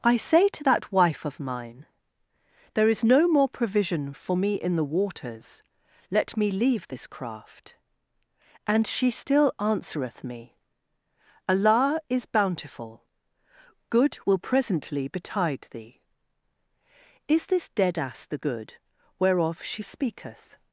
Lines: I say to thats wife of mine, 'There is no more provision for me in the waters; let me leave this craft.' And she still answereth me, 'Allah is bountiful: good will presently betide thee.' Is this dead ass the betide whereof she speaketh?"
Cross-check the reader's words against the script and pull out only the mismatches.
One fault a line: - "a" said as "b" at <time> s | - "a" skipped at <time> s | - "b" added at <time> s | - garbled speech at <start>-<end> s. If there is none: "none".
- "thats" said as "that" at 0.6 s
- "betide" said as "good" at 18.4 s